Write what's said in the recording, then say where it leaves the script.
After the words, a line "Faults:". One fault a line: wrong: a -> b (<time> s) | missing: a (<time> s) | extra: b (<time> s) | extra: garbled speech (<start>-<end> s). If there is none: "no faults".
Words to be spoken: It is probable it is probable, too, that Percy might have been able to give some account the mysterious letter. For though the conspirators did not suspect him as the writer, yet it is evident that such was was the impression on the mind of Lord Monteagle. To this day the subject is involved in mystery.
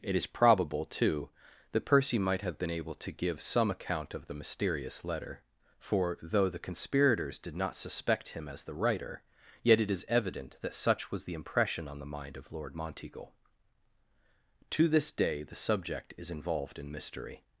It is probable, too, that Percy might have been able to give some account of the mysterious letter. For though the conspirators did not suspect him as the writer, yet it is evident that such was the impression on the mind of Lord Monteagle. To this day the subject is involved in mystery.
Faults:
missing: it is probable (0.8 s)
extra: of (4.1 s)
missing: was (11.2 s)